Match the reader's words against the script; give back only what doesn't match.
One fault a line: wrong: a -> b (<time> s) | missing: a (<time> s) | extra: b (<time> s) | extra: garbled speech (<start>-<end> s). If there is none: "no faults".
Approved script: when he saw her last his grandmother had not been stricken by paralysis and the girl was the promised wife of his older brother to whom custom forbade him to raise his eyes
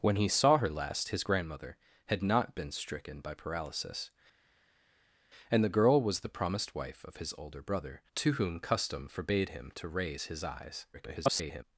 extra: garbled speech (10.9-11.6 s)